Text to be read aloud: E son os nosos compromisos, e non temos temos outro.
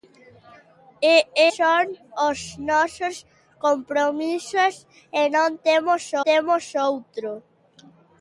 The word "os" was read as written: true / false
true